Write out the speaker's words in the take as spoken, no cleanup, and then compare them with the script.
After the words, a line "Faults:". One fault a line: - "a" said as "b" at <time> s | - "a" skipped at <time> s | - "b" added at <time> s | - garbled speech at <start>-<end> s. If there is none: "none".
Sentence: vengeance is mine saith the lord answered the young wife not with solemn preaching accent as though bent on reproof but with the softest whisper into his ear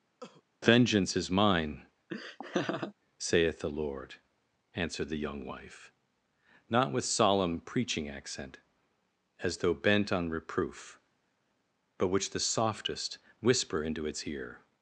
vengeance is mine saith the lord answered the young wife not with solemn preaching accent as though bent on reproof but which the softest whisper into its ear
Faults:
- "with" said as "which" at 12.1 s
- "his" said as "its" at 14.1 s